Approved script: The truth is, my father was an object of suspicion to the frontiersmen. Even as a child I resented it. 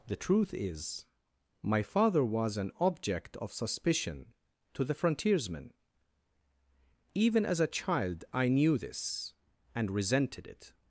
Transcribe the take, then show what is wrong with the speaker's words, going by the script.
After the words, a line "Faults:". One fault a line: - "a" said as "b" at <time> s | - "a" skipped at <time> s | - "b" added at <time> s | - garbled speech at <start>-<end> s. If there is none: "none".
The truth is, my father was an object of suspicion to the frontiersmen. Even as a child I knew this, and resented it.
Faults:
- "knew this and" added at 8.5 s